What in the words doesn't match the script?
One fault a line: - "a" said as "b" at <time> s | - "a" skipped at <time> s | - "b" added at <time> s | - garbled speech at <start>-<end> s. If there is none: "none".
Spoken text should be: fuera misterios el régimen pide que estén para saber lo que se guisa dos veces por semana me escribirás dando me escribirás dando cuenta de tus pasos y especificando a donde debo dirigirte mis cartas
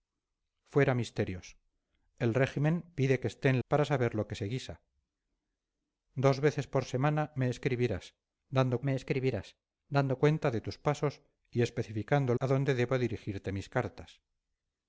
none